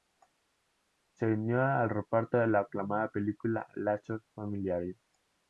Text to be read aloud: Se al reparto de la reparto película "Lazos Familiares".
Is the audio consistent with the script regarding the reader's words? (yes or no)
no